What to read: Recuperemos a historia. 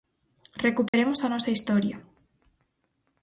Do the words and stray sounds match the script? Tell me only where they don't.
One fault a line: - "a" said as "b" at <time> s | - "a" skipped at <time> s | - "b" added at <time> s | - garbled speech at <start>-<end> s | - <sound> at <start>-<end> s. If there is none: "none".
- dropout at 0.9-0.9 s
- "nosa" added at 1.3 s